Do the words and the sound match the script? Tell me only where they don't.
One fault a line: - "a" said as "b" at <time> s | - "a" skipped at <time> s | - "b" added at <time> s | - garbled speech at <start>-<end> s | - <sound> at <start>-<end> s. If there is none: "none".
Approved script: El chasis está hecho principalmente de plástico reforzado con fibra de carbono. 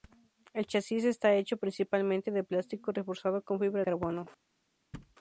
- "de" skipped at 3.8 s
- thud at 4.9-5.2 s